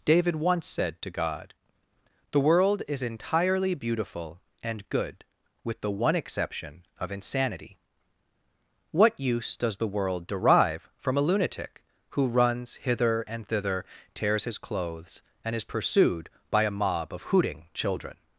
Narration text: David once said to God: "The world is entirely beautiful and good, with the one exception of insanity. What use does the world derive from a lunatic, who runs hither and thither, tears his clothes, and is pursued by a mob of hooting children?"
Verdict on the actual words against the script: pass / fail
pass